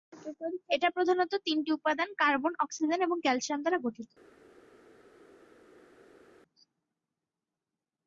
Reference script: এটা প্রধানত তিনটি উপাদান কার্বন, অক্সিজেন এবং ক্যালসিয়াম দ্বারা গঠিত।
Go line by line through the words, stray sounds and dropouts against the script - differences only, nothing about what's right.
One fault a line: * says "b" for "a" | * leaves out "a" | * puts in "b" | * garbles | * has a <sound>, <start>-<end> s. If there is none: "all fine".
all fine